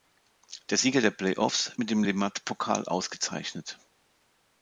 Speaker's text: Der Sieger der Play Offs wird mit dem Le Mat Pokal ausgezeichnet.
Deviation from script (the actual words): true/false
true